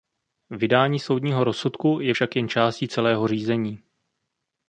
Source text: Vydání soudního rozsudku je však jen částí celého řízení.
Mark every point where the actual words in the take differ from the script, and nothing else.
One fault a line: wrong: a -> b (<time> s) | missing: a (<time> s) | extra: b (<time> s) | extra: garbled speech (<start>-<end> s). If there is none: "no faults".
no faults